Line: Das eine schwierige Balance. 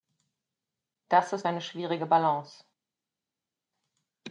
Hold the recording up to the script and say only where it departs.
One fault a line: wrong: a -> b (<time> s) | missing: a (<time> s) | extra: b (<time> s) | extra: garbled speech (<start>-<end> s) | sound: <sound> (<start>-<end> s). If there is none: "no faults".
extra: ist (1.3 s)